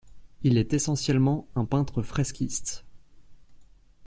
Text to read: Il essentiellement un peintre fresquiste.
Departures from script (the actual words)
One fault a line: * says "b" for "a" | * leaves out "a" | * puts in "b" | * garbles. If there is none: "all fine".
* puts in "est"